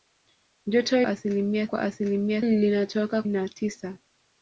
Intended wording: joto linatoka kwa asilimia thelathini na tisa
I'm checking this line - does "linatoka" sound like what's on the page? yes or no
no